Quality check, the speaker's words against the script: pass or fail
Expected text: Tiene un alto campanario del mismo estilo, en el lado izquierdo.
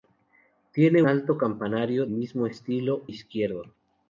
fail